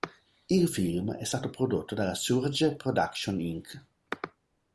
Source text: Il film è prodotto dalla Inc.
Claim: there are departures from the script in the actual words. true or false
true